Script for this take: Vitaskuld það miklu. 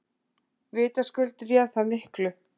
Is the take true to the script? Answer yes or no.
no